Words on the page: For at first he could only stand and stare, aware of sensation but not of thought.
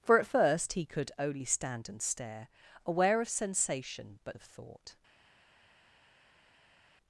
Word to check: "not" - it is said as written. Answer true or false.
false